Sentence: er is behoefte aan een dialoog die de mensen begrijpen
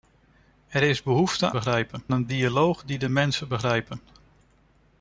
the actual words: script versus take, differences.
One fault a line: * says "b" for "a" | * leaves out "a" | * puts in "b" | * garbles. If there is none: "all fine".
* says "begrijpen" for "aan"